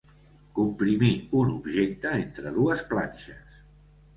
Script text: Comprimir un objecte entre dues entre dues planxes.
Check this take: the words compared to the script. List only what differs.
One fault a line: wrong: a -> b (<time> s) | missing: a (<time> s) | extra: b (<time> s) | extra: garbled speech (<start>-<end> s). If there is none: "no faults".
missing: entre dues (2.9 s)